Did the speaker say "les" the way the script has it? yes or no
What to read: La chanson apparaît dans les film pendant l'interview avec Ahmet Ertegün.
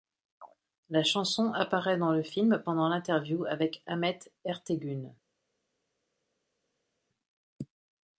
no